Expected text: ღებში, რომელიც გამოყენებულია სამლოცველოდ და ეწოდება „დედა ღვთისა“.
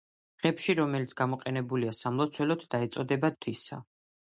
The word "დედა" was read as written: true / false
false